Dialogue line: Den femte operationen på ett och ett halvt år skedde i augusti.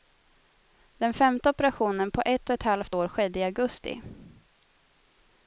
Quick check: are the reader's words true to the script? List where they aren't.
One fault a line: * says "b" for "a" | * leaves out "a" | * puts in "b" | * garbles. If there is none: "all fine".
all fine